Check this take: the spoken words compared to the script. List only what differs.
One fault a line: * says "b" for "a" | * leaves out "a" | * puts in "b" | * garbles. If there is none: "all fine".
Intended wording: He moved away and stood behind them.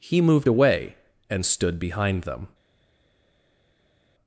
all fine